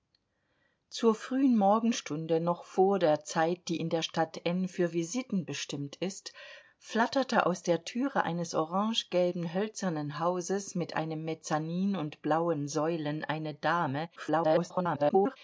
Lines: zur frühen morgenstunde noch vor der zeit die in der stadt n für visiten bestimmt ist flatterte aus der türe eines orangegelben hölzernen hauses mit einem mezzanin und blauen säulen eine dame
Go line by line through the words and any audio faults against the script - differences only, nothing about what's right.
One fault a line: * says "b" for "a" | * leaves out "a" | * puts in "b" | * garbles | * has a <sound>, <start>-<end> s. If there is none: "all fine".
* garbles